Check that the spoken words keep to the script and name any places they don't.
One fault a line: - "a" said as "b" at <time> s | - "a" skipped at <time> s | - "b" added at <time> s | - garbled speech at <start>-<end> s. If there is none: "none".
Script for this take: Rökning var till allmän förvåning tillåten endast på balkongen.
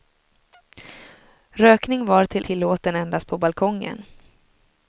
- "allmän förvåning" skipped at 2.5 s